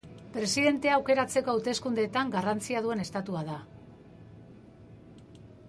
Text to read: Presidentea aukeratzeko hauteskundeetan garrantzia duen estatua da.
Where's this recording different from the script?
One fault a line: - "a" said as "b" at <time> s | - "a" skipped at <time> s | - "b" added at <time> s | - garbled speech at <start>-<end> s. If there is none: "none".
none